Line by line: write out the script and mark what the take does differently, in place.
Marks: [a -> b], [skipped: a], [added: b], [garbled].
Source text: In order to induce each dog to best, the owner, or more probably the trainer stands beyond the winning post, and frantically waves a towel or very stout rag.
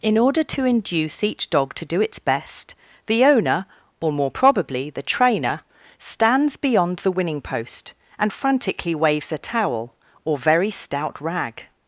In order to induce each dog to [added: do its] best, the owner, or more probably the trainer stands beyond the winning post, and frantically waves a towel or very stout rag.